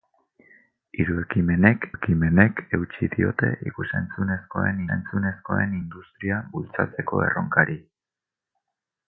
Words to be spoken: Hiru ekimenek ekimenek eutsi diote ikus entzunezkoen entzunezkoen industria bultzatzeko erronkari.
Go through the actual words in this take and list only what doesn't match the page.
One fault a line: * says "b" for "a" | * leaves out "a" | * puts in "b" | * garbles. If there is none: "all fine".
all fine